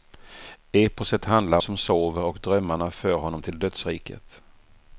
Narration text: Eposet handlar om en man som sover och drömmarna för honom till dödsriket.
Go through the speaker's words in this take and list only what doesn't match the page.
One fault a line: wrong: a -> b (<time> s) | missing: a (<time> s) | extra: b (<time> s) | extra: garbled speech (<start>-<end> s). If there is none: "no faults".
missing: om en man (1.6 s)